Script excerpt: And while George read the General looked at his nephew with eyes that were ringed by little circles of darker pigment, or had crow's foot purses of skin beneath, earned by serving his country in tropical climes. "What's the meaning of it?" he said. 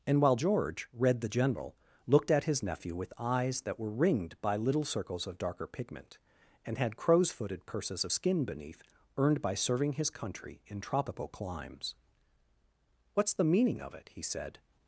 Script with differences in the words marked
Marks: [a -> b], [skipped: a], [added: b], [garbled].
And while George read the General looked at his nephew with eyes that were ringed by little circles of darker pigment, [or -> and] had crow's [foot -> footed] purses of skin beneath, earned by serving his country in tropical climes. "What's the meaning of it?" he said.